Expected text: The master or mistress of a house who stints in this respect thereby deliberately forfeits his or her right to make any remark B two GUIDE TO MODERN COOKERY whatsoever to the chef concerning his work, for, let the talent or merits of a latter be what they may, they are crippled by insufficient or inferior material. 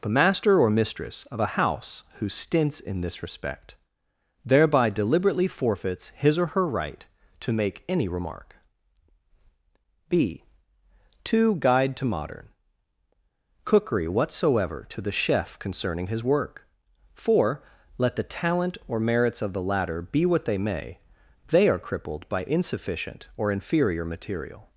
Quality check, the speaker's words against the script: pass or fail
fail